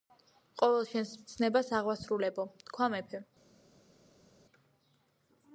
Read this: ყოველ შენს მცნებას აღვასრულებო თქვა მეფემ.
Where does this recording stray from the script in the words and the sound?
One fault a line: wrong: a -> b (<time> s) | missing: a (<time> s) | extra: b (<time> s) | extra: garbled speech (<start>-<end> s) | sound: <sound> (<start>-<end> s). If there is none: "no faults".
no faults